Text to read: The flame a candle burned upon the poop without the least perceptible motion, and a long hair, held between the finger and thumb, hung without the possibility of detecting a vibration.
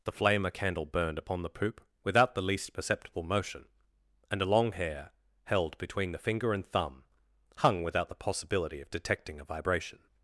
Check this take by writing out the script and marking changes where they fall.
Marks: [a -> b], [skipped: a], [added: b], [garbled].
The flame a candle burned upon the poop without the least perceptible motion, and a long hair, held between the finger and thumb, hung without the possibility of detecting a vibration.